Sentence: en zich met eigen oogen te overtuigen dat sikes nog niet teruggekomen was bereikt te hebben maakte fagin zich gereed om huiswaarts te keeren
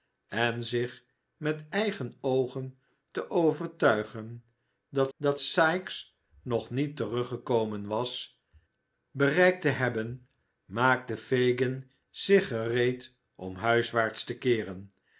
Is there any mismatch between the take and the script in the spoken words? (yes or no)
yes